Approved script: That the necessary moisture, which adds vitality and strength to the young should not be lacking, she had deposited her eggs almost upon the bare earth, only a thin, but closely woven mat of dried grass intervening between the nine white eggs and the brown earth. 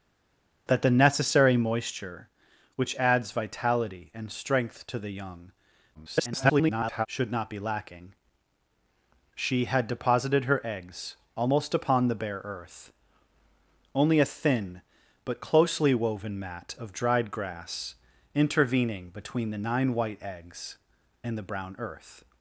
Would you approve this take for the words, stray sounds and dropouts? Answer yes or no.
no